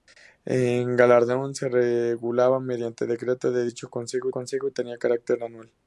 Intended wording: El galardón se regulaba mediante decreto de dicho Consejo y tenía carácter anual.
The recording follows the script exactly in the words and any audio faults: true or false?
false